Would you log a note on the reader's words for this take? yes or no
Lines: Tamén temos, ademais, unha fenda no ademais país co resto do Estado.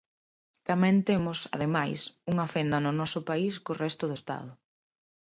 yes